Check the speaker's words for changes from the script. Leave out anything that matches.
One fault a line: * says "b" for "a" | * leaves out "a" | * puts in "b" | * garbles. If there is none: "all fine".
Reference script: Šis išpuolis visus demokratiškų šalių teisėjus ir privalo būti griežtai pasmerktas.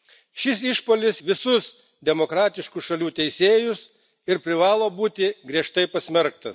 all fine